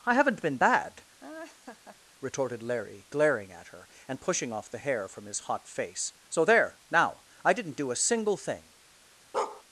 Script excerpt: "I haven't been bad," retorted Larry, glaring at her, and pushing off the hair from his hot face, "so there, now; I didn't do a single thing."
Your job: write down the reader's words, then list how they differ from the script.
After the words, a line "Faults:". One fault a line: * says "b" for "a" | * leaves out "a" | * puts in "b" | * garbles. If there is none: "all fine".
"I haven't been bad," retorted Larry, glaring at her, and pushing off the hair from his hot face, "so there, now; I didn't do a single thing."
Faults:
all fine